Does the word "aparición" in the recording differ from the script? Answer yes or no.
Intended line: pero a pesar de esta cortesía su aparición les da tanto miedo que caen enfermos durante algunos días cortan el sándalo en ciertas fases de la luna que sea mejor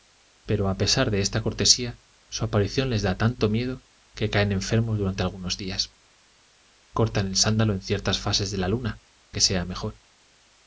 no